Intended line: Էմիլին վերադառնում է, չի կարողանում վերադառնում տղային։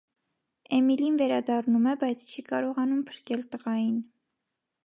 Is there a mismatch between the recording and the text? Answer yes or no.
yes